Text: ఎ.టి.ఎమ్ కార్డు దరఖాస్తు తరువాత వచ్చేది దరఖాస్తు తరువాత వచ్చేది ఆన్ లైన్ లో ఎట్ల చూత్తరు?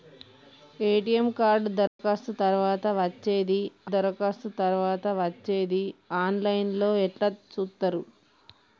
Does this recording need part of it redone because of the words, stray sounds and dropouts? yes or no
yes